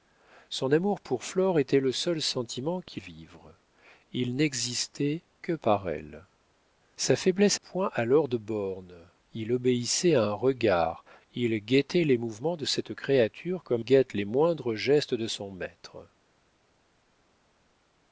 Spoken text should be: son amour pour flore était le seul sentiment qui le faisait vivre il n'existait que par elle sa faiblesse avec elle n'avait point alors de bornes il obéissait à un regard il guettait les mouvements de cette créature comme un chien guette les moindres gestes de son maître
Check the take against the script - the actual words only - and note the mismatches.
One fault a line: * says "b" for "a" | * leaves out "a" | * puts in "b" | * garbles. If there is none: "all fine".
* leaves out "le faisait"
* leaves out "avec elle n'avait"
* leaves out "un chien"